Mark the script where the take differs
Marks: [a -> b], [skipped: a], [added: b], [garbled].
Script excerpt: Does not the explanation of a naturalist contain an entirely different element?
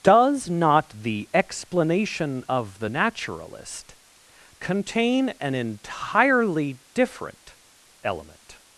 Does not the explanation of [a -> the] naturalist contain an entirely different element?